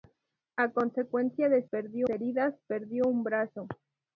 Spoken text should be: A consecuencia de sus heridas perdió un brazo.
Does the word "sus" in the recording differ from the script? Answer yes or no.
yes